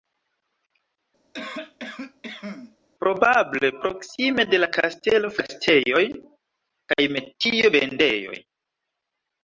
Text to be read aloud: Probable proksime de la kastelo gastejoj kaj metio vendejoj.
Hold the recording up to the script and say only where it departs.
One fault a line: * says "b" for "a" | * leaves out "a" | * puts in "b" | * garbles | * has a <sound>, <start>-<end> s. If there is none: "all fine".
* has a cough, 1.3-2.8 s